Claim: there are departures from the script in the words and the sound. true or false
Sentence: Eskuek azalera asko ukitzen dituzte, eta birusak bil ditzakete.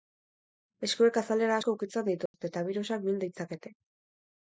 true